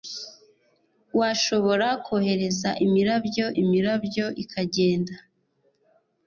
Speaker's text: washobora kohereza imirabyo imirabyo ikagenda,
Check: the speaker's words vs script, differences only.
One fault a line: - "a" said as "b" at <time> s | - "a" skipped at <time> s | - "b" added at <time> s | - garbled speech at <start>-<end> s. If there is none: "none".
none